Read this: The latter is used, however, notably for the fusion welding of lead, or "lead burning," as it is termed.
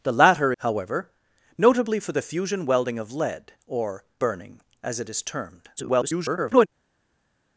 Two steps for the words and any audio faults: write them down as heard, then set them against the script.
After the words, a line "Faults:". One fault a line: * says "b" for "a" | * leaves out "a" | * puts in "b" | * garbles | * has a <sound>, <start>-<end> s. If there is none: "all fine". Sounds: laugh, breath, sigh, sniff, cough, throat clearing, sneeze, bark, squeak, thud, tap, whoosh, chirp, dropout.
The latter however, notably for the fusion welding of lead, or "burning," as it is termed. [garbled]
Faults:
* leaves out "is used"
* leaves out "lead"
* garbles